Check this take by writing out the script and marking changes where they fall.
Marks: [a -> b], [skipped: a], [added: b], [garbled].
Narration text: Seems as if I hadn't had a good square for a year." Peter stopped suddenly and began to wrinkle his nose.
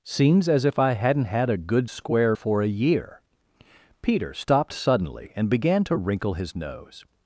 Seems as if I hadn't had a good square for a year." Peter stopped suddenly and began to wrinkle his nose.